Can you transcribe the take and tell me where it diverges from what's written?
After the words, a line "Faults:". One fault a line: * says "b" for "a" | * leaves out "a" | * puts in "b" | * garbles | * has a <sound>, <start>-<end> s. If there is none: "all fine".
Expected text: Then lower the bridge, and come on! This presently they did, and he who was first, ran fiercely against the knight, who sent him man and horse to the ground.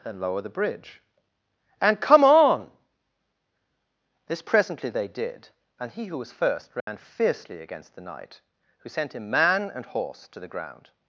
And lower the bridge, and come on! This presently they did, and he who was first, ran fiercely against the knight, who sent him man and horse to the ground.
Faults:
* says "And" for "Then"
* has a dropout, 6.8-6.9 s